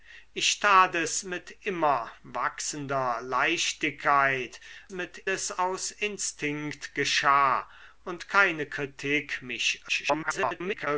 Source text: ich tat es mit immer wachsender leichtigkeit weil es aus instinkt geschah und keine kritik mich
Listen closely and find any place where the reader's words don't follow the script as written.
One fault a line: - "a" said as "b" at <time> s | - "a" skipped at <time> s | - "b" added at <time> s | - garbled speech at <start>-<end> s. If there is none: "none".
- "weil" said as "mit" at 4.9 s
- garbled speech at 9.9-10.9 s